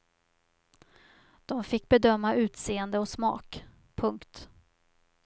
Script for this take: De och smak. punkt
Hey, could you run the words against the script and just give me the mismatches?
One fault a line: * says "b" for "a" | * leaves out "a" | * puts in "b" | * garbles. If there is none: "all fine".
* puts in "fick bedöma utseende"